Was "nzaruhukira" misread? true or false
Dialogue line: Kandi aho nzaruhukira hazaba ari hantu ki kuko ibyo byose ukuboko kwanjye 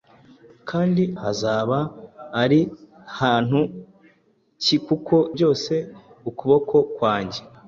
true